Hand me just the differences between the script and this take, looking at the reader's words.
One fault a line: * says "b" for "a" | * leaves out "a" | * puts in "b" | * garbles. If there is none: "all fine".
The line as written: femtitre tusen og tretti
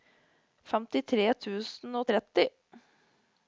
all fine